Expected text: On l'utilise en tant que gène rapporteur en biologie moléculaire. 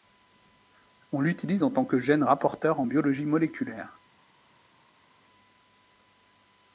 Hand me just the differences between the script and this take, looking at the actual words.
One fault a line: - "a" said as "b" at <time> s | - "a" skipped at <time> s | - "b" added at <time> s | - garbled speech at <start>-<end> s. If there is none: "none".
none